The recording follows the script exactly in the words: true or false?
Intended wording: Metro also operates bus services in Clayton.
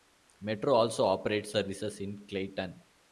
false